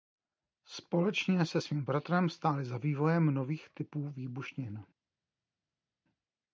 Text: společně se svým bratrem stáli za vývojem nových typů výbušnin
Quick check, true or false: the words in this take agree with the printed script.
true